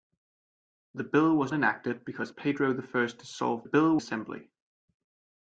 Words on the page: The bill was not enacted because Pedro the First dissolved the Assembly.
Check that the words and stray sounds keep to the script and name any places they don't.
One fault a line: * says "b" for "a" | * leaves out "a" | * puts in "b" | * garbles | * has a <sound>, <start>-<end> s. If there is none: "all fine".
* leaves out "not"
* says "bill" for "the"